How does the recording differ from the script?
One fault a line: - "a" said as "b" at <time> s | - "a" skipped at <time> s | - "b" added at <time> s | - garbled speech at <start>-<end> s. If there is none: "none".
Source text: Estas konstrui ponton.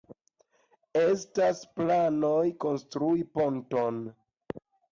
- "planoj" added at 1.8 s